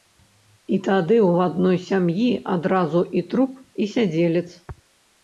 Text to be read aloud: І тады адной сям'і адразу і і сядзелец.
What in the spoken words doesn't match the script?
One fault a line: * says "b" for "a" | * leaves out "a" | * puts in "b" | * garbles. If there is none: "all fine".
* puts in "ў"
* puts in "труп"